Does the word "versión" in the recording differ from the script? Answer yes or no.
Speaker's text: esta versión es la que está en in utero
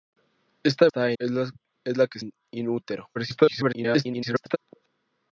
yes